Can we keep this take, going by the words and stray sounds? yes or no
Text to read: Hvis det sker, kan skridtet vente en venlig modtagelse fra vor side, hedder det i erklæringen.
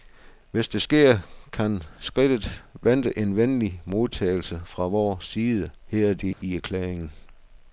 no